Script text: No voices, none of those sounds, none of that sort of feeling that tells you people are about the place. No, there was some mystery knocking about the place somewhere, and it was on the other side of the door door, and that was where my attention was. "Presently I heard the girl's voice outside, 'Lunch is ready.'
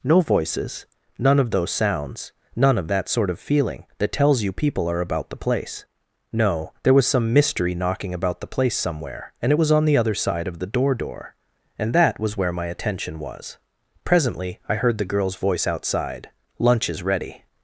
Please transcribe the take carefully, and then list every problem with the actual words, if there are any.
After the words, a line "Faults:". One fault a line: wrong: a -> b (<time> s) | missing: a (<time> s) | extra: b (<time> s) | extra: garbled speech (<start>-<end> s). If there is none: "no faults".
No voices, none of those sounds, none of that sort of feeling that tells you people are about the place. No, there was some mystery knocking about the place somewhere, and it was on the other side of the door door, and that was where my attention was. "Presently I heard the girl's voice outside, 'Lunch is ready.'
Faults:
no faults